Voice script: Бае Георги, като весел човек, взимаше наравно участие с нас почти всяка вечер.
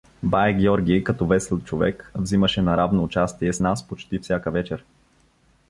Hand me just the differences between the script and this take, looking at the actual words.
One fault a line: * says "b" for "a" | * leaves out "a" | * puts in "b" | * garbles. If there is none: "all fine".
all fine